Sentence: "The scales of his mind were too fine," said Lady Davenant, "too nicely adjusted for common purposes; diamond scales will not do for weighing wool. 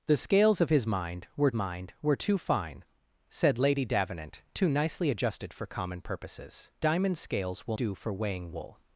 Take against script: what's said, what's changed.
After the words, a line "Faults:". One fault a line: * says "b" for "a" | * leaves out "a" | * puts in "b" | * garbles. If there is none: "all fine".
"The scales of his mind were mind were too fine," said Lady Davenant, "too nicely adjusted for common purposes; diamond scales will do for weighing wool.
Faults:
* puts in "mind were"
* leaves out "not"